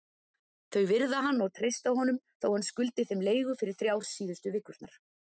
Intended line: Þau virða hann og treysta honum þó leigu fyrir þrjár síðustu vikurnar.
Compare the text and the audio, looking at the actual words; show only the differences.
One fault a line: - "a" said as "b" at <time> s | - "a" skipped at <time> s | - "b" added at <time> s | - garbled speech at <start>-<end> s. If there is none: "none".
- "hann skuldi þeim" added at 2.5 s